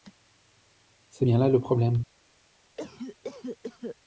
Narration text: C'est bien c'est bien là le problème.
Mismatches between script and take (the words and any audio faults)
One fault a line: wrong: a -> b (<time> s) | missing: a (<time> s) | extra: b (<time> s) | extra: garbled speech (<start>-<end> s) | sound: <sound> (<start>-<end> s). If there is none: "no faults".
missing: c'est bien (1.4 s)
sound: cough (2.8-4.0 s)